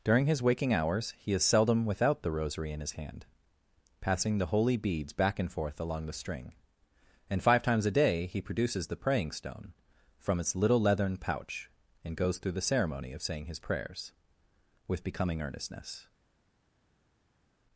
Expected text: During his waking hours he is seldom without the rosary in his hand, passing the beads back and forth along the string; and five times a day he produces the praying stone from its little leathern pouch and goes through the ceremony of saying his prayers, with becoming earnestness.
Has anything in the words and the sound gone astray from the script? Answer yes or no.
yes